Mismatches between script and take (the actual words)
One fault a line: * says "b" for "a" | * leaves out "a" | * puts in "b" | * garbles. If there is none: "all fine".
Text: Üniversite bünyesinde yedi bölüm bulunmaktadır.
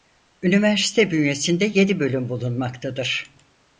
all fine